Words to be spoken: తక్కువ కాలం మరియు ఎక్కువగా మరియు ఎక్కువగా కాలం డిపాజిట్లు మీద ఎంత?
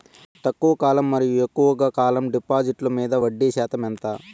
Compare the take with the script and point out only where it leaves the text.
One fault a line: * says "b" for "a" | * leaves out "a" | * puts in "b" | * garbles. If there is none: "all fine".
* leaves out "మరియు ఎక్కువగా"
* puts in "వడ్డీ శాతం"